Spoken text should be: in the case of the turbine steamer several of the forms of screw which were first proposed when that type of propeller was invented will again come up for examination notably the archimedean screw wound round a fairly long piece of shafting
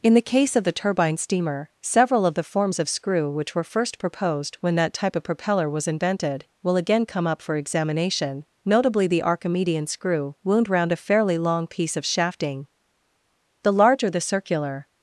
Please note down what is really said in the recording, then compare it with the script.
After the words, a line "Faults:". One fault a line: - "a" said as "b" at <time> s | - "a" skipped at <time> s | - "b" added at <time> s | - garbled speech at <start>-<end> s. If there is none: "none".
in the case of the turbine steamer several of the forms of screw which were first proposed when that type of propeller was invented will again come up for examination notably the archimedean screw wound round a fairly long piece of shafting the larger the circular
Faults:
- "the larger the circular" added at 13.6 s